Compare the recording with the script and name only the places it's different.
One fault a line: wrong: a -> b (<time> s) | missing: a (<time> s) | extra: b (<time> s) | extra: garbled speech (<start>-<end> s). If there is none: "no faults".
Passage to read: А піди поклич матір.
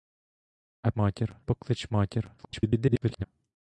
wrong: піди -> матір (1.0 s)
extra: garbled speech (2.4-3.3 s)